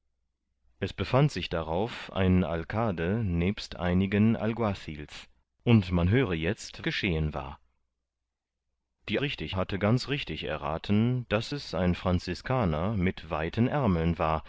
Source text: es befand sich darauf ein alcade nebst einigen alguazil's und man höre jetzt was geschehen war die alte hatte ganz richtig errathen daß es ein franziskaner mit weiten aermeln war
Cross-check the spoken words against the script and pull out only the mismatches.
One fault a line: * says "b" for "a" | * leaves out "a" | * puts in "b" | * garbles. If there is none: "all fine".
* leaves out "was"
* says "richtig" for "alte"